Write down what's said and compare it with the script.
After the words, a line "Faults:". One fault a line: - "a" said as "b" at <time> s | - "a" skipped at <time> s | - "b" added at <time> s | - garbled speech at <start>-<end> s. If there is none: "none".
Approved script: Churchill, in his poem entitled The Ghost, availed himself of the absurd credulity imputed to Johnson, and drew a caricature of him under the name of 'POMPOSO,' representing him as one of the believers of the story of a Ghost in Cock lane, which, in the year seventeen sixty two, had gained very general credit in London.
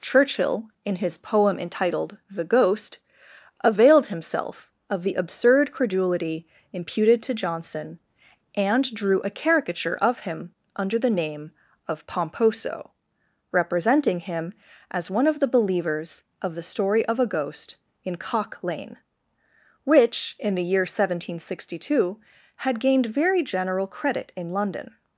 Churchill, in his poem entitled The Ghost, availed himself of the absurd credulity imputed to Johnson, and drew a caricature of him under the name of 'POMPOSO,' representing him as one of the believers of the story of a Ghost in Cock lane, which, in the year seventeen sixty two, had gained very general credit in London.
Faults:
none